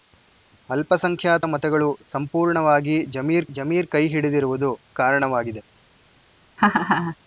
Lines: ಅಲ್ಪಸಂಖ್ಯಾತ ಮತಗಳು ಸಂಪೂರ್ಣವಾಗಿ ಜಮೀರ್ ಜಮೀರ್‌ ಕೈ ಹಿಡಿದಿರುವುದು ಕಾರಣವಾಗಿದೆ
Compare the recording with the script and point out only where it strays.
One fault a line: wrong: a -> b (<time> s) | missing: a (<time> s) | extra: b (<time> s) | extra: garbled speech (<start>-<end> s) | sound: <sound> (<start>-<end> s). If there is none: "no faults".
sound: laugh (6.6-7.2 s)